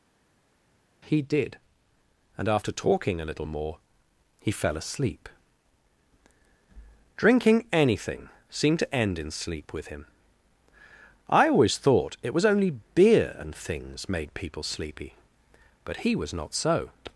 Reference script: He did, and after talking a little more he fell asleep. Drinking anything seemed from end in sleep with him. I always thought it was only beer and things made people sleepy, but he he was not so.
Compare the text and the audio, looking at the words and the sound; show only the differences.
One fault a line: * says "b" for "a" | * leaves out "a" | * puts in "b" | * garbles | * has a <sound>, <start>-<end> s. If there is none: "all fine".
* says "to" for "from"
* leaves out "he"